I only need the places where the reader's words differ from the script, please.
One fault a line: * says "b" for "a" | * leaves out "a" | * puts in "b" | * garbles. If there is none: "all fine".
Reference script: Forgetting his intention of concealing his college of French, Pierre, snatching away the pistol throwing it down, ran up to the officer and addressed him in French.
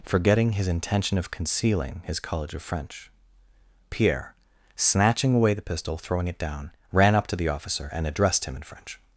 all fine